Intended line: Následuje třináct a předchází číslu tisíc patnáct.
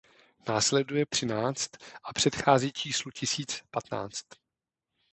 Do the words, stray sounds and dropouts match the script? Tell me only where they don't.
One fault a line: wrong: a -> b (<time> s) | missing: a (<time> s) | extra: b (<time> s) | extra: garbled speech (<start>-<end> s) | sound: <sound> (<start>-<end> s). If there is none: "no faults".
no faults